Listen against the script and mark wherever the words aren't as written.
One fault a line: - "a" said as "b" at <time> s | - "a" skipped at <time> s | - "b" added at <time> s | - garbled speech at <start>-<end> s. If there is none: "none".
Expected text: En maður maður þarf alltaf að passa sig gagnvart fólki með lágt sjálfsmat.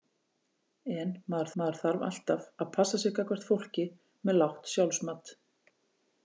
none